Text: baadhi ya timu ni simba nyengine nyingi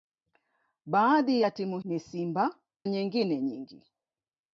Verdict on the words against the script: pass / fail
pass